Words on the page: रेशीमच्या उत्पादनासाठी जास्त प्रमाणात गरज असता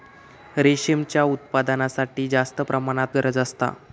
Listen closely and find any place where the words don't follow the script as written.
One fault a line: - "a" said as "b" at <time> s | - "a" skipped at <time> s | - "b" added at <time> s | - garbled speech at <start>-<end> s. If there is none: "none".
none